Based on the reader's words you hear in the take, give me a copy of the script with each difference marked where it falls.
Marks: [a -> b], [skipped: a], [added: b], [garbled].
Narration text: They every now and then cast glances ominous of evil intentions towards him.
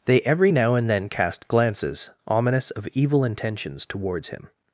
They every now and then cast glances ominous of evil intentions towards him.